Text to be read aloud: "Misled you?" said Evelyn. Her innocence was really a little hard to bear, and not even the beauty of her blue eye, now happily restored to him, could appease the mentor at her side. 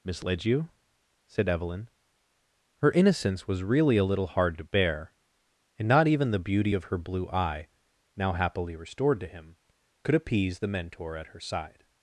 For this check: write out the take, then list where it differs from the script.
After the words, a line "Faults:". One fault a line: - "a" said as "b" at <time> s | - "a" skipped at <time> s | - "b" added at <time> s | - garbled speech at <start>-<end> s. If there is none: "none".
"Misled you?" said Evelyn. Her innocence was really a little hard to bear, and not even the beauty of her blue eye, now happily restored to him, could appease the mentor at her side.
Faults:
none